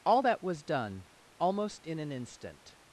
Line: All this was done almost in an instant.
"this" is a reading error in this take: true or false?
true